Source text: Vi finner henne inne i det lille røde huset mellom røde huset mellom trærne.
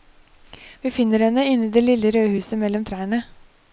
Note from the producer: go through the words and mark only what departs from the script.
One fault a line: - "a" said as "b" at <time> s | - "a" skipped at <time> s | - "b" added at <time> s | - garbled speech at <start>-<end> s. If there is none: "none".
- "røde huset mellom" skipped at 2.8 s